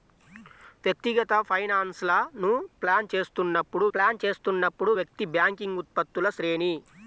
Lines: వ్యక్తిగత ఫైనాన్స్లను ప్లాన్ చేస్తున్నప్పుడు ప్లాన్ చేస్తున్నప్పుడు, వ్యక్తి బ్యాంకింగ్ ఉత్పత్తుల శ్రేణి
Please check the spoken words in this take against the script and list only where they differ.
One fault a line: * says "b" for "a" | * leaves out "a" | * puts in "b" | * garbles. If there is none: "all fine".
all fine